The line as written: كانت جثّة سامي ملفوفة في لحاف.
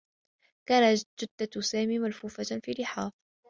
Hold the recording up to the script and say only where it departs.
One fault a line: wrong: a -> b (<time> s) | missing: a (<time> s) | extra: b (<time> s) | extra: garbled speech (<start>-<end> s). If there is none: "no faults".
no faults